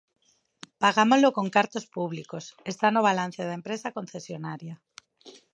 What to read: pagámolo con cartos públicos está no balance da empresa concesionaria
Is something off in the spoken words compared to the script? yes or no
no